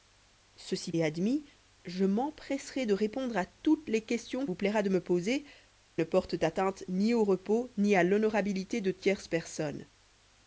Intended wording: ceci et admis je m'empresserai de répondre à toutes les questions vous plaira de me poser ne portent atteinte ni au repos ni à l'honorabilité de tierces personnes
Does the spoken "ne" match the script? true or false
true